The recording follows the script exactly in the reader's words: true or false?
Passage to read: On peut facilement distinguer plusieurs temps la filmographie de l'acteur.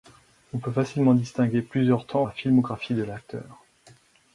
true